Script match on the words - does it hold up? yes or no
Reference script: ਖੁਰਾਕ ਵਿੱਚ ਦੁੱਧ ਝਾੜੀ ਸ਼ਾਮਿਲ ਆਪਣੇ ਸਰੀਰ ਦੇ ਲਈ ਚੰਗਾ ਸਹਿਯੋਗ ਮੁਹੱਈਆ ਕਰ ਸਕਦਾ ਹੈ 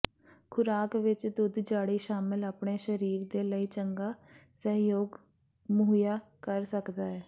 yes